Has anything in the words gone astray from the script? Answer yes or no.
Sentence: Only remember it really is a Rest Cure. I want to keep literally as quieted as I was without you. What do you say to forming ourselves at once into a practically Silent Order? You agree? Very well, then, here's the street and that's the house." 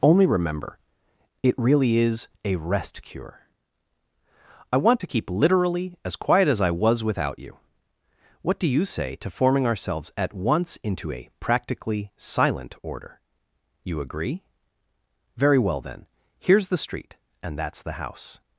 yes